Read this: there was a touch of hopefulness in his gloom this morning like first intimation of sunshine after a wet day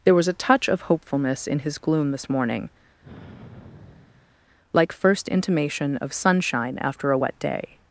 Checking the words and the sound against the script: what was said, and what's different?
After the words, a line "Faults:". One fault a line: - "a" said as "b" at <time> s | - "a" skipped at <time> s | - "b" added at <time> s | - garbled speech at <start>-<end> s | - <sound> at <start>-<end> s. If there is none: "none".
there was a touch of hopefulness in his gloom this morning like first intimation of sunshine after a wet day
Faults:
- sigh at 3.0-4.4 s